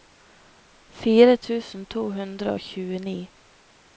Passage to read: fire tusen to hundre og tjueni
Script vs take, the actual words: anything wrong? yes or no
no